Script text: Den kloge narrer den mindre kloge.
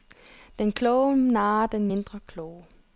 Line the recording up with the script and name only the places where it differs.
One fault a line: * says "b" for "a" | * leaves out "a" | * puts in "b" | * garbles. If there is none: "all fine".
all fine